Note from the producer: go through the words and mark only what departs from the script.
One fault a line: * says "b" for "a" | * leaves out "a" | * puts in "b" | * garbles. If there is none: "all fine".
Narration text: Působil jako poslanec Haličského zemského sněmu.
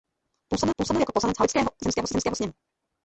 * puts in "působil"
* puts in "zemského"